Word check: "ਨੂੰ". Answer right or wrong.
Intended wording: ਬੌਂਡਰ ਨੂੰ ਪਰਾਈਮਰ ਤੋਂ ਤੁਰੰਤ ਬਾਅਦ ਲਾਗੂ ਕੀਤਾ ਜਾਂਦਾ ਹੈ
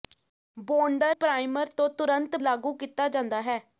wrong